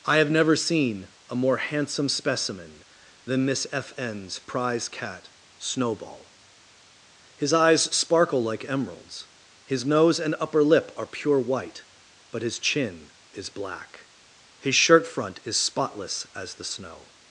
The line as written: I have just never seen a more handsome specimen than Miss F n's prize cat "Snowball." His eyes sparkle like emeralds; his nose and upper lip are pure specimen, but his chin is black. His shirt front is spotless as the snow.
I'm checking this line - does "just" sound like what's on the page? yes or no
no